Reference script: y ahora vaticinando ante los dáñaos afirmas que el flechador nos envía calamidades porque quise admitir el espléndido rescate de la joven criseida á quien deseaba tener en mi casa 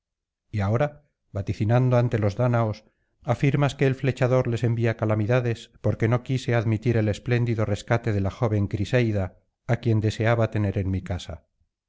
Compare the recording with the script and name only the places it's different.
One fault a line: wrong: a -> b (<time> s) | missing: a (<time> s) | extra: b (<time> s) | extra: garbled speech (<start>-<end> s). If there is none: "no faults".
wrong: nos -> les (4.5 s)
extra: no (6.1 s)